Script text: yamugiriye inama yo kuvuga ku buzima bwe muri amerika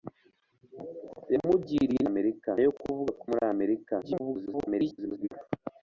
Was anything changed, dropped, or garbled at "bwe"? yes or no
yes